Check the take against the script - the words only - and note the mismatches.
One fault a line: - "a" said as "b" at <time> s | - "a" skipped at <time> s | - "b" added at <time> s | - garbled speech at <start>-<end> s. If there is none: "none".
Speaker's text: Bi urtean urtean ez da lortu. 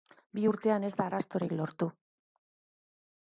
- "urtean" skipped at 0.8 s
- "arrastorik" added at 1.1 s